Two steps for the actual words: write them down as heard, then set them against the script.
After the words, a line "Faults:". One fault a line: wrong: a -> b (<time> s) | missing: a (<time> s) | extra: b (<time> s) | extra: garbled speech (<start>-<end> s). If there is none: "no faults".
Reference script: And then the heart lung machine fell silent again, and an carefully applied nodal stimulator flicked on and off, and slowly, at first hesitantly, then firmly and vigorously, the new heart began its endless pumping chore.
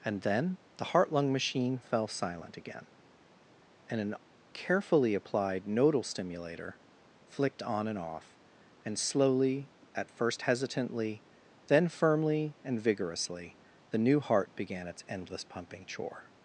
And then the heart lung machine fell silent again, and an carefully applied nodal stimulator flicked on and off, and slowly, at first hesitantly, then firmly and vigorously, the new heart began its endless pumping chore.
Faults:
no faults